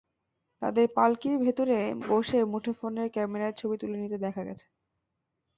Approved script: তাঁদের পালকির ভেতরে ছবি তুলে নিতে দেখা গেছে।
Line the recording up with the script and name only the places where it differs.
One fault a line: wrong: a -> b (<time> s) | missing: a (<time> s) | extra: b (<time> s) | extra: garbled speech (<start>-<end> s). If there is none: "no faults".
extra: বসে মুঠোফোনের ক্যামেরায় (2.0 s)